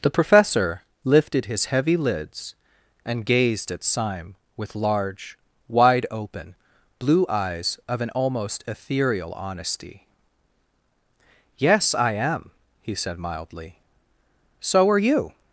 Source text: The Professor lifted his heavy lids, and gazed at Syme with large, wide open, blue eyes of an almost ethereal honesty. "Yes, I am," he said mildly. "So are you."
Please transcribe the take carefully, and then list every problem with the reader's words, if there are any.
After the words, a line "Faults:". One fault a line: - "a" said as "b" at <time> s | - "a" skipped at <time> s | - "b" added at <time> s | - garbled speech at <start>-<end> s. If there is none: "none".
The Professor lifted his heavy lids, and gazed at Syme with large, wide open, blue eyes of an almost ethereal honesty. "Yes, I am," he said mildly. "So are you."
Faults:
none